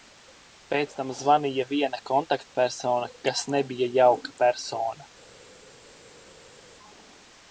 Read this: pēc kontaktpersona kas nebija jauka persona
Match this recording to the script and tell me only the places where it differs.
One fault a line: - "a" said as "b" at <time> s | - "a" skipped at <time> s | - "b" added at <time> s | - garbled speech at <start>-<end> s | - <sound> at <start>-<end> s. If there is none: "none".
- "tam zvanīja viena" added at 1.0 s